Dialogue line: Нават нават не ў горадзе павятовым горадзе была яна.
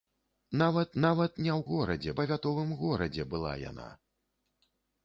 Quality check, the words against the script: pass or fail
pass